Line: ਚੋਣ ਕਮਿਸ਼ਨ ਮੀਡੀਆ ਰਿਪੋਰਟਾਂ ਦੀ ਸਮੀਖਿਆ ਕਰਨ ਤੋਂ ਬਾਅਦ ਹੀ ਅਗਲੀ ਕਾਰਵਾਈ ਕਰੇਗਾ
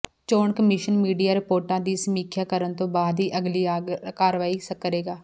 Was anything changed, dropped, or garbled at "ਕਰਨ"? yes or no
no